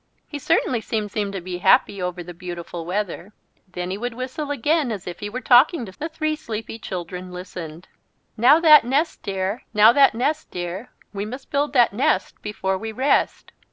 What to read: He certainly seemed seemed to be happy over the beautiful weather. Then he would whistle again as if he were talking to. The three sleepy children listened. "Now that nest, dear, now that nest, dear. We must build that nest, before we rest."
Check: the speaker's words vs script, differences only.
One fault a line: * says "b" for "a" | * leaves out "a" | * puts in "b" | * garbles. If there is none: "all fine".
all fine